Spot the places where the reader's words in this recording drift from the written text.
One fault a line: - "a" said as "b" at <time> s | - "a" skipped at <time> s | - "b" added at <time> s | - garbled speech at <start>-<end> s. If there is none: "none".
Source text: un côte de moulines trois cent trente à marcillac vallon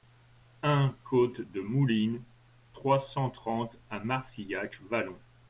none